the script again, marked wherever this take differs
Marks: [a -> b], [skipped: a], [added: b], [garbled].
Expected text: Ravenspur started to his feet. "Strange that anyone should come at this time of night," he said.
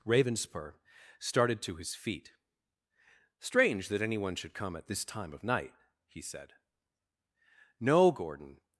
Ravenspur started to his feet. "Strange that anyone should come at this time of night," he said. [added: No Gordon]